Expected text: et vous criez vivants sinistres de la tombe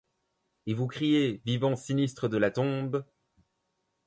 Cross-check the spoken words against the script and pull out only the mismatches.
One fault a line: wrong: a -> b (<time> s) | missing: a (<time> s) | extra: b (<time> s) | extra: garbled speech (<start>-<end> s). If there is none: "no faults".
no faults